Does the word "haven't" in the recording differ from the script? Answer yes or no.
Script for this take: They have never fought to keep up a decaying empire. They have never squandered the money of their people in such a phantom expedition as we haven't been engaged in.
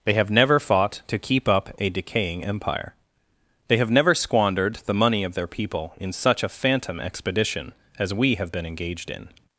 yes